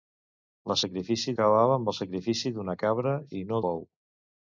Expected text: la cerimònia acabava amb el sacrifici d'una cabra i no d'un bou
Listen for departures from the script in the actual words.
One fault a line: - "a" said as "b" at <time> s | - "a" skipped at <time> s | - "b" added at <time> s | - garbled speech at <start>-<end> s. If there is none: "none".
- "cerimònia" said as "sacrifici" at 0.8 s
- "d'un" skipped at 3.6 s